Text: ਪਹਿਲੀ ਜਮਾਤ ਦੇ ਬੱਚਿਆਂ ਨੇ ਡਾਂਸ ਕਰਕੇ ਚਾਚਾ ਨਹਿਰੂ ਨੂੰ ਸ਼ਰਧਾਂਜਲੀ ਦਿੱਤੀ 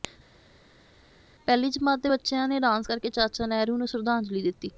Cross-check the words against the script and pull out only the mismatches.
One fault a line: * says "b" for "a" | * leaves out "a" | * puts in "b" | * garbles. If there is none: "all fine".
all fine